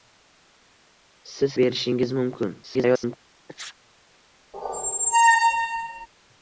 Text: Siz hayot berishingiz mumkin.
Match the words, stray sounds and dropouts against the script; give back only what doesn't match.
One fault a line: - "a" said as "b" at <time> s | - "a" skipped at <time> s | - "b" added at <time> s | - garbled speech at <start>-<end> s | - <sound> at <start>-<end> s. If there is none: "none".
- "hayot" skipped at 1.6 s
- garbled speech at 2.6-3.2 s
- sneeze at 3.5-3.8 s
- squeak at 4.5-6.1 s